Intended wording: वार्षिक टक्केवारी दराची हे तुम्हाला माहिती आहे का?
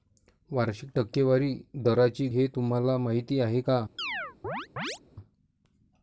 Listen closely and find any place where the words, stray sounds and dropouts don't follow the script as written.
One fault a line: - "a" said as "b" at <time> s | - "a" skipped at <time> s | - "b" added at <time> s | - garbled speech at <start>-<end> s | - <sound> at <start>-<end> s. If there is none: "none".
- chirp at 4.0-5.0 s